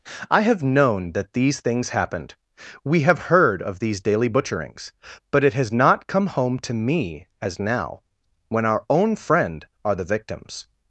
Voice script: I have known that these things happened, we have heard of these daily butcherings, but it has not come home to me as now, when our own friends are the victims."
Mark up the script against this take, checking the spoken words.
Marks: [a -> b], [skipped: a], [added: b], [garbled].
I have known that these things happened, we have heard of these daily butcherings, but it has not come home to me as now, when our own [friends -> friend] are the victims."